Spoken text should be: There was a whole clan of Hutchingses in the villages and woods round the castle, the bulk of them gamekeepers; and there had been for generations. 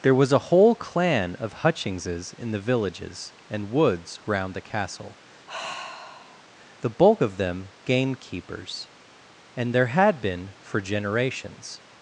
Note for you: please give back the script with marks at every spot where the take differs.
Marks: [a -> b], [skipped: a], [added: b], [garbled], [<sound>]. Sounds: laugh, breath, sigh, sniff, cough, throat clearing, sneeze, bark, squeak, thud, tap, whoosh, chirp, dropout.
There was a whole clan of Hutchingses in the villages and woods round the castle, [sigh] the bulk of them gamekeepers; and there had been for generations.